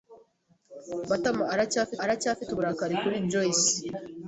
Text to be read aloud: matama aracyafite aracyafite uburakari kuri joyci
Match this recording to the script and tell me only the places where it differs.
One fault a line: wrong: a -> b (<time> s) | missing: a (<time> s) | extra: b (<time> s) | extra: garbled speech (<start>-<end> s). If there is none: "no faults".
no faults